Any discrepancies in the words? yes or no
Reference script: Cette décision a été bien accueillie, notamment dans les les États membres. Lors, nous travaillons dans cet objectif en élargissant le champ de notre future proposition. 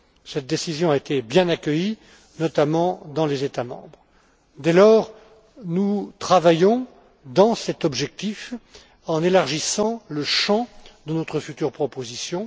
yes